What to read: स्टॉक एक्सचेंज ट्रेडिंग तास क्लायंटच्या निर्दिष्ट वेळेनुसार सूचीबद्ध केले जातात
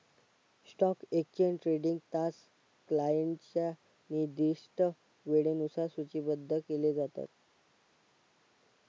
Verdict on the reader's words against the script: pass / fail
pass